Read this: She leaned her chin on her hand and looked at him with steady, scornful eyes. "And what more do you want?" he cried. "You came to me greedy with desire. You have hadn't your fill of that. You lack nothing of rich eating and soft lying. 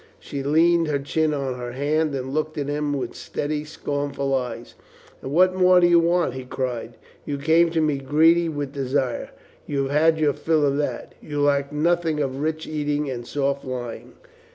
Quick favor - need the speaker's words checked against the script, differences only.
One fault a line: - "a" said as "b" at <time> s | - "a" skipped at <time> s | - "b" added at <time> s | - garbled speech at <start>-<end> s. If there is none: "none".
- "hadn't" said as "had" at 9.9 s